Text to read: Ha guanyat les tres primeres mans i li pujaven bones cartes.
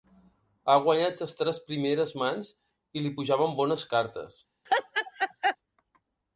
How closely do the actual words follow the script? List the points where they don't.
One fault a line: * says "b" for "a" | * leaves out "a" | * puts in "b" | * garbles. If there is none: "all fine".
all fine